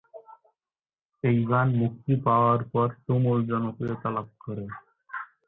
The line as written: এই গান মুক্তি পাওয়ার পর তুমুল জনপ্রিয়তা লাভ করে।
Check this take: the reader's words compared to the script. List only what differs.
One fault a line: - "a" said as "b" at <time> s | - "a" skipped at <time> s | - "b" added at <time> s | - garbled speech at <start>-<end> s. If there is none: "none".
none